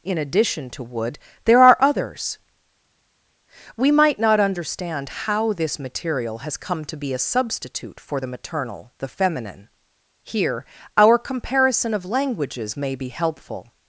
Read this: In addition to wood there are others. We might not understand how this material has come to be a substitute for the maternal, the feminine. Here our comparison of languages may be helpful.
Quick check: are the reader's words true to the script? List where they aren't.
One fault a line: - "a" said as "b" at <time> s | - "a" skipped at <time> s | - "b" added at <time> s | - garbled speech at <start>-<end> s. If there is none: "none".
none